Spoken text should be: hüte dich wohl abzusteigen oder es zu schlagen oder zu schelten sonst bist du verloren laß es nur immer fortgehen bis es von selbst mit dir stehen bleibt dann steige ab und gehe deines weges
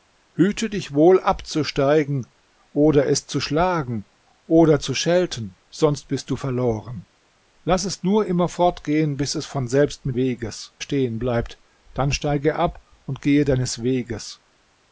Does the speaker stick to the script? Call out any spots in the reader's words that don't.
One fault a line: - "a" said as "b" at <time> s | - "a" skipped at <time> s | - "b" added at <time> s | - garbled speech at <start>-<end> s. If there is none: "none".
- "dir" said as "weges" at 10.2 s